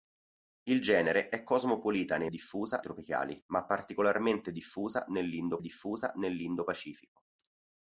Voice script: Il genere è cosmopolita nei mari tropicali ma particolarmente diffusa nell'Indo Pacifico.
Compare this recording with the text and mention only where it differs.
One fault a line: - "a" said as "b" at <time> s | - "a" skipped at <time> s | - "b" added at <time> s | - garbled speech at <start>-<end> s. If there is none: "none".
- "mari" said as "diffusa" at 2.3 s
- "diffusa nell'Indo" added at 5.6 s